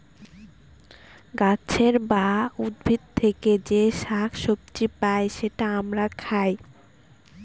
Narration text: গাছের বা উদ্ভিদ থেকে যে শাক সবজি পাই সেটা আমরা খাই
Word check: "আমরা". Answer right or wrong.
right